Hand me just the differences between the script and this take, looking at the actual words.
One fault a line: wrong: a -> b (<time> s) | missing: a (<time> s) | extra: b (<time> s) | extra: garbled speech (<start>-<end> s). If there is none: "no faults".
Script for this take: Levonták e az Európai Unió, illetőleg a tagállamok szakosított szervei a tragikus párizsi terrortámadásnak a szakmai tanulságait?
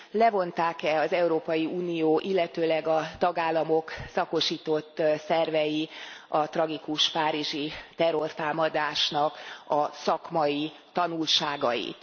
no faults